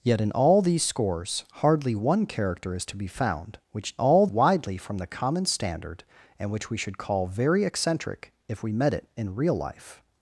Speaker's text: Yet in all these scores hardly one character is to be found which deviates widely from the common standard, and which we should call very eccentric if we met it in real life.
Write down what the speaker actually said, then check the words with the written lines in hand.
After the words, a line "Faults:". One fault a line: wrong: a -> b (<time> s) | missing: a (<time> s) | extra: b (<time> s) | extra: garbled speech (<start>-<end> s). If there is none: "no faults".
Yet in all these scores hardly one character is to be found which all widely from the common standard, and which we should call very eccentric if we met it in real life.
Faults:
wrong: deviates -> all (4.0 s)